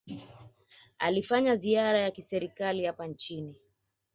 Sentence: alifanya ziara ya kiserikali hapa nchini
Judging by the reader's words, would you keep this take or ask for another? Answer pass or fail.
pass